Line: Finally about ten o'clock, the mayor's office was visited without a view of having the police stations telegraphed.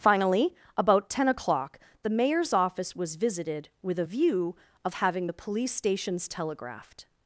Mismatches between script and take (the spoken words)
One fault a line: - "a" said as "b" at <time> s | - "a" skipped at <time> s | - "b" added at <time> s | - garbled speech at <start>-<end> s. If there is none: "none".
- "without" said as "with" at 3.8 s